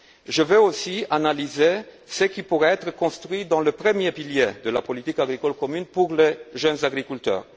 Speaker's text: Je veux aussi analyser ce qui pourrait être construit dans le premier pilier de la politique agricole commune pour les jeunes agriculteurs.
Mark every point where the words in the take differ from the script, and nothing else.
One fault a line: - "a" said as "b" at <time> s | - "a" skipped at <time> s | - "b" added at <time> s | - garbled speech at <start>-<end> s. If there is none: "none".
none